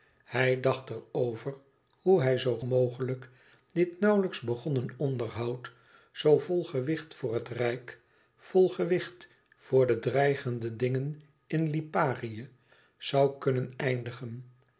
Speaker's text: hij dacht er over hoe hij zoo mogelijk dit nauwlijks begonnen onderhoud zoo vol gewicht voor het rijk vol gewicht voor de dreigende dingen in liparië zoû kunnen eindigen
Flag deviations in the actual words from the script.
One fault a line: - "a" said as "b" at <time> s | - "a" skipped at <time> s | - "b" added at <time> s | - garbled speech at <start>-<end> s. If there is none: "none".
none